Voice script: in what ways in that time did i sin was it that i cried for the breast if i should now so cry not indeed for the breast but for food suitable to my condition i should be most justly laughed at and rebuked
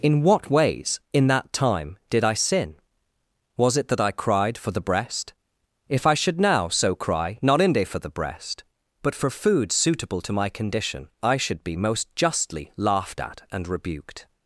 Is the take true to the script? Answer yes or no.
no